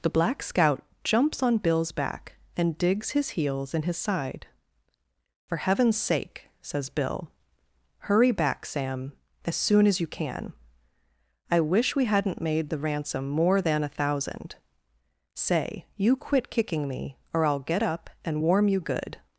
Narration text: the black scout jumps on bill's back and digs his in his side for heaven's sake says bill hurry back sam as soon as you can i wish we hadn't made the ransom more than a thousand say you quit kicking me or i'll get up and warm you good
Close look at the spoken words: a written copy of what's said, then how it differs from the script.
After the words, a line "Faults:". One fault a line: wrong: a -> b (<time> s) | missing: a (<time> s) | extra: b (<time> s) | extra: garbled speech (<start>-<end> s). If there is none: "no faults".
the black scout jumps on bill's back and digs his heels in his side for heaven's sake says bill hurry back sam as soon as you can i wish we hadn't made the ransom more than a thousand say you quit kicking me or i'll get up and warm you good
Faults:
extra: heels (3.3 s)